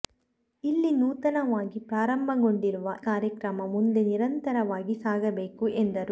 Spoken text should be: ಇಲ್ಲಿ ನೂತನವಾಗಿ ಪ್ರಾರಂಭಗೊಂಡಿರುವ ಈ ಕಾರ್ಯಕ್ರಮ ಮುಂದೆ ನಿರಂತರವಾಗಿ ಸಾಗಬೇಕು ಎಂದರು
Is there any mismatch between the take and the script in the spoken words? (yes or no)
yes